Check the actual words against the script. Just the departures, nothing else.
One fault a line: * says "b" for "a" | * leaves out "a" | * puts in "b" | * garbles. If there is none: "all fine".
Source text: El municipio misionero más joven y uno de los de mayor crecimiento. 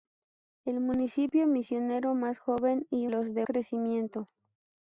* leaves out "uno de"
* leaves out "mayor"